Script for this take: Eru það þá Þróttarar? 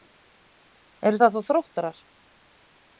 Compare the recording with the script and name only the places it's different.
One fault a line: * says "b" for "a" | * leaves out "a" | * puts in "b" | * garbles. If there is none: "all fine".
all fine